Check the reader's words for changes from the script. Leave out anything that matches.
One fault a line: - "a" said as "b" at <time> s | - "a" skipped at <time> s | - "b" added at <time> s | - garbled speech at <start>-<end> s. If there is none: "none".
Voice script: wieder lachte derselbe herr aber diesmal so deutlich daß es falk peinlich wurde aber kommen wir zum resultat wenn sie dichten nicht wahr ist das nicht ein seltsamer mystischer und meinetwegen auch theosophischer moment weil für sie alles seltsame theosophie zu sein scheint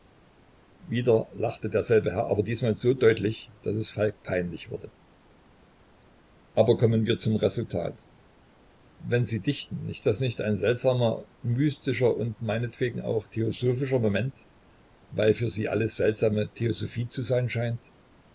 - "wahr ist" skipped at 10.1 s